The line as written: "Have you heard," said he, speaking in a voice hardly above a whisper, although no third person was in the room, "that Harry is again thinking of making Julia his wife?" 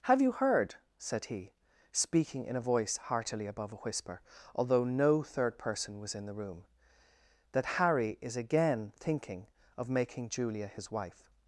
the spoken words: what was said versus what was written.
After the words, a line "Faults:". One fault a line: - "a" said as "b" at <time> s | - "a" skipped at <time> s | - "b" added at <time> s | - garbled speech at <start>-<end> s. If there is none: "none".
"Have you heard," said he, speaking in a voice heartily above a whisper, although no third person was in the room, "that Harry is again thinking of making Julia his wife?"
Faults:
- "hardly" said as "heartily" at 3.0 s